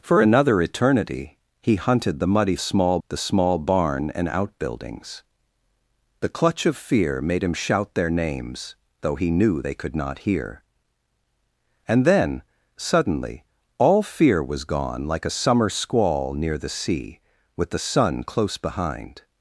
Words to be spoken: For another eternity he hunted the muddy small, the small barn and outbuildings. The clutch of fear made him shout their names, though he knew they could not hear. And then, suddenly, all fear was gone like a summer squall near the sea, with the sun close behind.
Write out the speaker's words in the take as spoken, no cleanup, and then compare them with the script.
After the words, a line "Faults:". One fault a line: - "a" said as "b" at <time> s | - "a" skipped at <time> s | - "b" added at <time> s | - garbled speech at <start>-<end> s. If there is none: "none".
For another eternity he hunted the muddy small, the small barn and outbuildings. The clutch of fear made him shout their names, though he knew they could not hear. And then, suddenly, all fear was gone like a summer squall near the sea, with the sun close behind.
Faults:
none